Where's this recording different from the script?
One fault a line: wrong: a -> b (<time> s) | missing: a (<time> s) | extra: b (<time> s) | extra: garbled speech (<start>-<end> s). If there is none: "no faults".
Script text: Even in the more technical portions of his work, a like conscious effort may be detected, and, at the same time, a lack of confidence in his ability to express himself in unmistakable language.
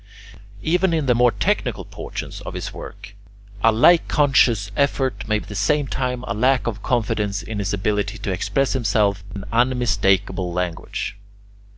missing: be detected and (5.4 s)